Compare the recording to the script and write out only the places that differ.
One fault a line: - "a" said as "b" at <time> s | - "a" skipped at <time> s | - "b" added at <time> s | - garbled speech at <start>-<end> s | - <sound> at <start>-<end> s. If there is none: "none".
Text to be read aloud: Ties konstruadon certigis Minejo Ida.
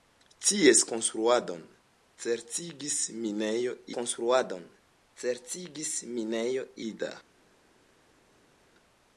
- "konstruadon certigis Minejo" added at 4.0 s